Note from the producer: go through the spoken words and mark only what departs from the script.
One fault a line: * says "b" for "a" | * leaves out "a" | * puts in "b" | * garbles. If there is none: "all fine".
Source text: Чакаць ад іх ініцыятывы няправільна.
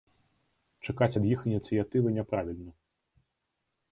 all fine